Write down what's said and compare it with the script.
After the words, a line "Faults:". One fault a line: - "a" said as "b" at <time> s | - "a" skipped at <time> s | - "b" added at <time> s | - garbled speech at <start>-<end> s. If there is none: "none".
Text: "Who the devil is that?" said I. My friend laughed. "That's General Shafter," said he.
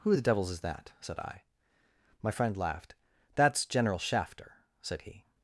"Who the devils is that?" said I. My friend laughed. "That's General Shafter," said he.
Faults:
- "devil" said as "devils" at 0.2 s